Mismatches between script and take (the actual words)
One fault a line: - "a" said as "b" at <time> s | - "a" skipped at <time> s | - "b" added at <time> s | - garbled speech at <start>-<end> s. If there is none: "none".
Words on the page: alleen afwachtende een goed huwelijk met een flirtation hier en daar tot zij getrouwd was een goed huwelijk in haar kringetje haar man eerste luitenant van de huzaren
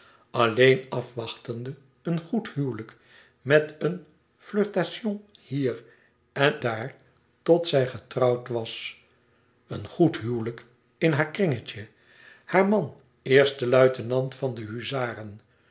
none